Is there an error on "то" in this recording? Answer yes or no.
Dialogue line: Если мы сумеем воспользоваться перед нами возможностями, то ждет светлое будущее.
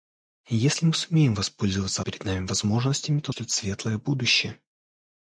no